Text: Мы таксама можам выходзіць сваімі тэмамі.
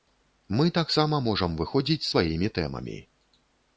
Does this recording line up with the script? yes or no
yes